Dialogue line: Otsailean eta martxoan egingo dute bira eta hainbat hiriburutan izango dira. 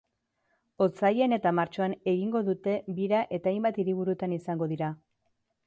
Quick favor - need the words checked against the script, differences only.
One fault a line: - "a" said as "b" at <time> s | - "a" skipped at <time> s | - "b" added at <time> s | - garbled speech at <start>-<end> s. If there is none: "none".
none